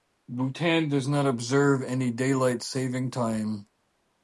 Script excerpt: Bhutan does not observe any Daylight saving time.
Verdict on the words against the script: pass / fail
pass